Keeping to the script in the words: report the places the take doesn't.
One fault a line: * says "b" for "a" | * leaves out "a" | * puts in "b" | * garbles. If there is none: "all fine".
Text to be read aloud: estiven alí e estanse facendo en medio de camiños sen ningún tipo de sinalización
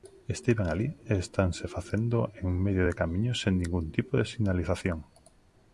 all fine